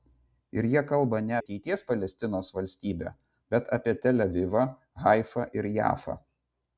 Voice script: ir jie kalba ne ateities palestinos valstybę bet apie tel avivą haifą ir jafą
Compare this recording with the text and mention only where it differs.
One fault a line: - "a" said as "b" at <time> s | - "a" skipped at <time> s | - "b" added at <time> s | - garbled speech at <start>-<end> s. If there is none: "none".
none